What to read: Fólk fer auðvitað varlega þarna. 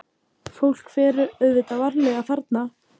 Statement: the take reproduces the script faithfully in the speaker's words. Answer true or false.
true